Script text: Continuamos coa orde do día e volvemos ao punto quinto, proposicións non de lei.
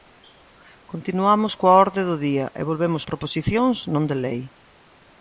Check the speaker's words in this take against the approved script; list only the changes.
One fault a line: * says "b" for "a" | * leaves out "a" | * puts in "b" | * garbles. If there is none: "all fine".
* leaves out "ao punto quinto"